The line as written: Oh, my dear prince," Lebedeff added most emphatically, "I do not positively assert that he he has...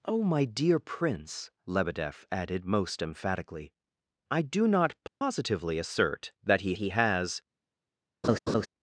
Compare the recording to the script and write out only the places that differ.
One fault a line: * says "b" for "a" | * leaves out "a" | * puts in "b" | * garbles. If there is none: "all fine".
all fine